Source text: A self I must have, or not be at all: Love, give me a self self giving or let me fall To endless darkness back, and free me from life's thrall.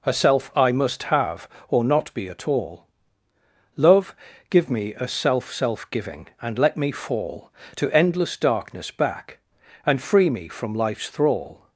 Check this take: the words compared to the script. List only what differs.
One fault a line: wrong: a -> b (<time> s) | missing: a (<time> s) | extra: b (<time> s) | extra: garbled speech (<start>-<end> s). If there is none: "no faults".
wrong: or -> and (6.4 s)